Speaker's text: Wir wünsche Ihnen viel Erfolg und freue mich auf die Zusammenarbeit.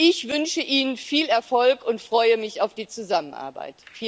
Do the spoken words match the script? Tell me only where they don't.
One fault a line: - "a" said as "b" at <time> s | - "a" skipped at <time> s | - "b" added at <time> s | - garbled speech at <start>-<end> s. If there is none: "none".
- "Wir" said as "Ich" at 0.0 s